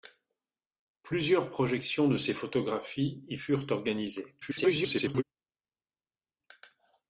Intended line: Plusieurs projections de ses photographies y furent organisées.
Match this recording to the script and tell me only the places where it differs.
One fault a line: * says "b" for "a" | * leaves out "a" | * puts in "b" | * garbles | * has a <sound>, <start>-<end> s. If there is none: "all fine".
* garbles